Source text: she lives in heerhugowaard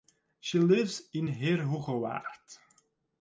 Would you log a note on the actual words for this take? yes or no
no